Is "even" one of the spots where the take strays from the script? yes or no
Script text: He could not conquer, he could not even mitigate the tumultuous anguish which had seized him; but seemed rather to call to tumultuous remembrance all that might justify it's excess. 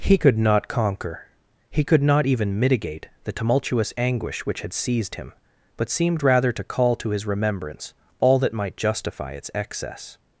no